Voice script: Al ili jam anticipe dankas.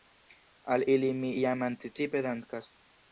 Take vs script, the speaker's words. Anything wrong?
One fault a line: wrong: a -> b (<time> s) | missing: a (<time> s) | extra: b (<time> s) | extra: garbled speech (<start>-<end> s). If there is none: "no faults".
extra: mi (1.2 s)